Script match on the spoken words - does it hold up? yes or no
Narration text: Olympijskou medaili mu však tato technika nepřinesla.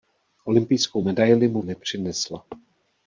no